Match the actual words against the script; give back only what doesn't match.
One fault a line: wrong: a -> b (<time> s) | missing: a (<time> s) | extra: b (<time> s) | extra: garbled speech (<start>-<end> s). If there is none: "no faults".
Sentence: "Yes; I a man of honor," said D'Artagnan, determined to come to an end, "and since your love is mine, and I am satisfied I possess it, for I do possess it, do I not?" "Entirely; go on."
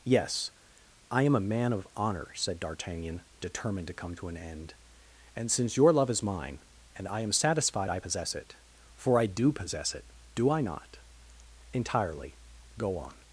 extra: am (1.2 s)